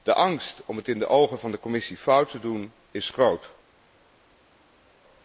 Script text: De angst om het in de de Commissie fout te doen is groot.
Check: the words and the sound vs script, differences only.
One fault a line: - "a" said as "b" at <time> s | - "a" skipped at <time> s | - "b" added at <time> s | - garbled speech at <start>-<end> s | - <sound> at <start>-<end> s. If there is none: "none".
- "ogen van" added at 1.1 s